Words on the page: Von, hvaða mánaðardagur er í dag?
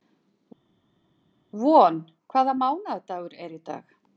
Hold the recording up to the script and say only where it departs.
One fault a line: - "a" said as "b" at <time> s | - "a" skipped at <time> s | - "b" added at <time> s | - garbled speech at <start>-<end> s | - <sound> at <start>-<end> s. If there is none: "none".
none